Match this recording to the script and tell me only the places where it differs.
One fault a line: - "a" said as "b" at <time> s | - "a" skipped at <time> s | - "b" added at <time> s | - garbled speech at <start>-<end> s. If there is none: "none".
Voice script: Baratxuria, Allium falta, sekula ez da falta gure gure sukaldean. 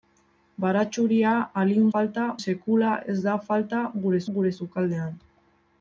none